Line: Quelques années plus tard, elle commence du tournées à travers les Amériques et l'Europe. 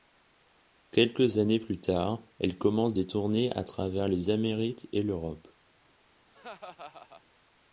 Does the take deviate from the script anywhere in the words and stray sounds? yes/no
yes